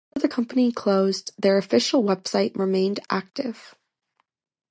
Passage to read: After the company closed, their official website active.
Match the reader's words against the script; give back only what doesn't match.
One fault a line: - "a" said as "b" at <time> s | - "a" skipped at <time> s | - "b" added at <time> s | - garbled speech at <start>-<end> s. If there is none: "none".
- "remained" added at 2.6 s